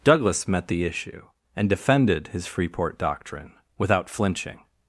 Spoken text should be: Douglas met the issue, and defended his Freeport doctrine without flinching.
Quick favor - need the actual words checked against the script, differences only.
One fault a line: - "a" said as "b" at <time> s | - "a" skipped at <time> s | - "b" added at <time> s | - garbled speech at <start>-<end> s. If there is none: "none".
none